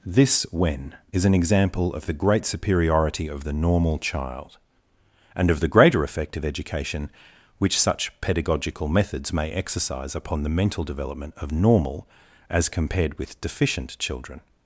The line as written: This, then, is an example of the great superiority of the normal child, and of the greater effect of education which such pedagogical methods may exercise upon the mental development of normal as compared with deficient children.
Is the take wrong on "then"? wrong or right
wrong